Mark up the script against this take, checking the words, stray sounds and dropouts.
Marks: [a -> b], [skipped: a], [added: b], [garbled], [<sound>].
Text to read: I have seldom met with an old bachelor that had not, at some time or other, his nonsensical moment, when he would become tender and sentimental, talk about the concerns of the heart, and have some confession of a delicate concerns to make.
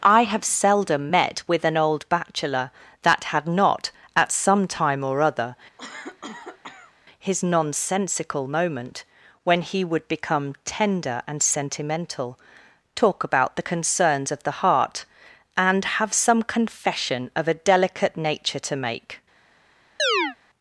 I have seldom met with an old bachelor that had not, at some time or other, [cough] his nonsensical moment, when he would become tender and sentimental, talk about the concerns of the heart, and have some confession of a delicate [concerns -> nature] to make. [chirp]